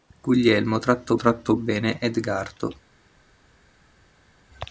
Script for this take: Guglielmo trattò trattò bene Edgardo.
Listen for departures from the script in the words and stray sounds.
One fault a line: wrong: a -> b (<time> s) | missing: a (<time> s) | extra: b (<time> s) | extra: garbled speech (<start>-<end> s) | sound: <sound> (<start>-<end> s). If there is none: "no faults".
no faults